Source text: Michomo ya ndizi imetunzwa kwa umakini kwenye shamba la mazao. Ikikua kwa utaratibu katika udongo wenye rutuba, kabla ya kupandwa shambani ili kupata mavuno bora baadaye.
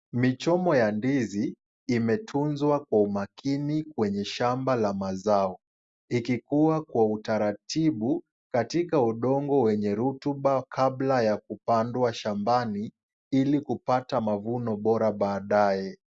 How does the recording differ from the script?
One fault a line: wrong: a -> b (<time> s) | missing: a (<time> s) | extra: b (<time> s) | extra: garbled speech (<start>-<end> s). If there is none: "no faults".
no faults